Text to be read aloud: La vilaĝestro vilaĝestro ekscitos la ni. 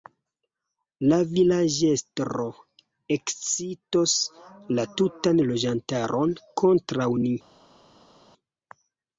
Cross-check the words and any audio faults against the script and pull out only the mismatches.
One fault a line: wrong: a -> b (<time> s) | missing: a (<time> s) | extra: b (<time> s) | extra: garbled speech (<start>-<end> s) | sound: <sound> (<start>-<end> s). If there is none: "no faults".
missing: vilaĝestro (2.5 s)
extra: tutan loĝantaron kontraŭ (5.0 s)